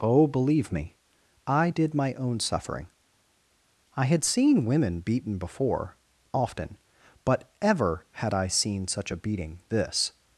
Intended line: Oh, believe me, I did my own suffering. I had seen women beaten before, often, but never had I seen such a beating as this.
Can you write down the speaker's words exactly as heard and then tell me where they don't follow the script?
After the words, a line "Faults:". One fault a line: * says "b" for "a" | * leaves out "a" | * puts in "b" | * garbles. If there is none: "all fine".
Oh, believe me, I did my own suffering. I had seen women beaten before, often, but ever had I seen such a beating this.
Faults:
* says "ever" for "never"
* leaves out "as"